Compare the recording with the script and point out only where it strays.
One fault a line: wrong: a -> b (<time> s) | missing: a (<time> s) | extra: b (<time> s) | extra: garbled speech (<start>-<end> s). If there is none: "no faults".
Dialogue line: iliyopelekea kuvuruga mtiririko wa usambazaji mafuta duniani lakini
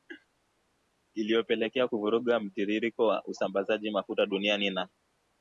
wrong: lakini -> na (4.7 s)